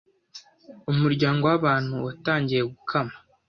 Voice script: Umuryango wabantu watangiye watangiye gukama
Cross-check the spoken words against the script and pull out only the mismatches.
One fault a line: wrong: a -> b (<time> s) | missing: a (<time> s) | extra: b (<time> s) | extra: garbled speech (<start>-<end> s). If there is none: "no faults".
missing: watangiye (2.6 s)